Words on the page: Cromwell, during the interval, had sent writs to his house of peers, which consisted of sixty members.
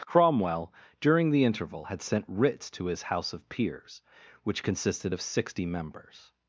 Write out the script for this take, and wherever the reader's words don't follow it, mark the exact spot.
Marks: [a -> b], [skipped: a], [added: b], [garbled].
Cromwell, during the interval, had sent writs to his house of peers, which consisted of sixty members.